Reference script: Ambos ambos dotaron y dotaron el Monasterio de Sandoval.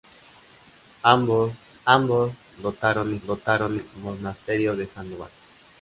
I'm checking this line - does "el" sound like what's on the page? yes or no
yes